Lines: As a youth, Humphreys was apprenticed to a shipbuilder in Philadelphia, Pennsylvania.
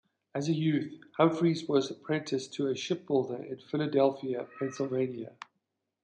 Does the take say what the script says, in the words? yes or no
yes